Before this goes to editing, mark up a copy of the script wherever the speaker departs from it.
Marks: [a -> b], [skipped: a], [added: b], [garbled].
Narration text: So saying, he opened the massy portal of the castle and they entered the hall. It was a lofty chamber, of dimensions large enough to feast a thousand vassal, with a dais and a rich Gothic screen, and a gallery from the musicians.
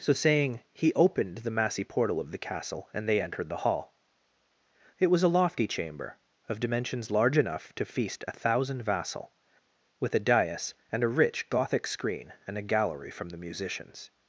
So saying, he opened the massy portal of the castle and they entered the hall. It was a lofty chamber, of dimensions large enough to feast a thousand vassal, with a dais and a rich Gothic screen, and a gallery from the musicians.